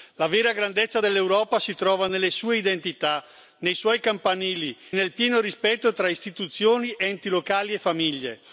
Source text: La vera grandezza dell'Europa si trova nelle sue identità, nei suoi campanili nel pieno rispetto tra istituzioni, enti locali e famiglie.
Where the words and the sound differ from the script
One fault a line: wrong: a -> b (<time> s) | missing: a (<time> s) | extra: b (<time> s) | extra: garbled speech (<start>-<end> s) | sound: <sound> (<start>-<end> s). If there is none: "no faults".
no faults